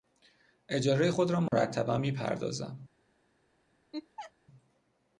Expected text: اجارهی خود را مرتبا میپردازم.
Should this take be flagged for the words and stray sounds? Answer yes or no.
yes